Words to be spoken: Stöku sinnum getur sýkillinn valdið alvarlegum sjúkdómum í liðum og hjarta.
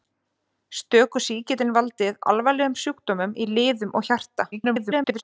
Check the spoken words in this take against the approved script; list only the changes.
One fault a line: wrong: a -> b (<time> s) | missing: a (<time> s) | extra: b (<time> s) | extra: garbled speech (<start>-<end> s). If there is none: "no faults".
missing: sinnum getur (1.2 s)
extra: garbled speech (4.5-5.2 s)